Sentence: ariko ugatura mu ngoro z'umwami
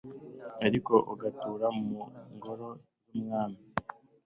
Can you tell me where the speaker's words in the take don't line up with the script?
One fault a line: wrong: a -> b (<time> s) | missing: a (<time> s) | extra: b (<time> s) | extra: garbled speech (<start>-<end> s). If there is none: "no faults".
no faults